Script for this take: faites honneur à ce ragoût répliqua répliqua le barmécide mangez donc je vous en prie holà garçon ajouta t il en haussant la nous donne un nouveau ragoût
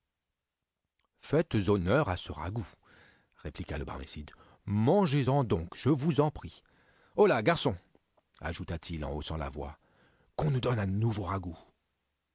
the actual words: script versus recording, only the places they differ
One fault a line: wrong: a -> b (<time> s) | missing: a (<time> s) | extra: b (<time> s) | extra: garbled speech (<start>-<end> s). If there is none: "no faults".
missing: répliqua (3.8 s)
extra: en (5.3 s)
extra: voix qu'on (9.5 s)